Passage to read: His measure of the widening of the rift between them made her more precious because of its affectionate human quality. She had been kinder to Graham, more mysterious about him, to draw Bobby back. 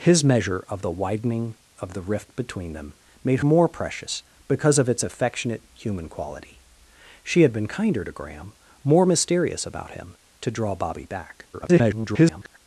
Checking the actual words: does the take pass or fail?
fail